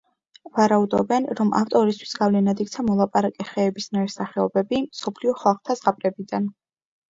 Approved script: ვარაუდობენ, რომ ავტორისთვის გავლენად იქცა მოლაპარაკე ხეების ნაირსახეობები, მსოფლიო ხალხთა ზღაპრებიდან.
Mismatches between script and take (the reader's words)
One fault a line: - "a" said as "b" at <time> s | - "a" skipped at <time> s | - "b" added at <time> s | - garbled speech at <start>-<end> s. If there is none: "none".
none